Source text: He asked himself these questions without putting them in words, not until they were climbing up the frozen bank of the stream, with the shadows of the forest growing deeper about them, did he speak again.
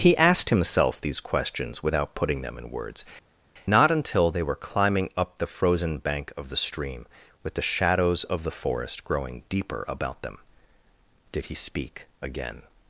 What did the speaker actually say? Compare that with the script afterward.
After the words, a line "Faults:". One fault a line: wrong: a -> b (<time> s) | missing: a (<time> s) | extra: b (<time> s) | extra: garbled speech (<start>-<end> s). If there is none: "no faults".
He asked himself these questions without putting them in words, not until they were climbing up the frozen bank of the stream, with the shadows of the forest growing deeper about them, did he speak again.
Faults:
no faults